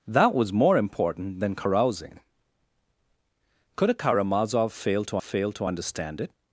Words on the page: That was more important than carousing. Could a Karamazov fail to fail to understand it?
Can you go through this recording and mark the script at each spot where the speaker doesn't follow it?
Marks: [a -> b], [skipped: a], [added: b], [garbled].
That was more important than carousing. Could a Karamazov fail to fail to understand it?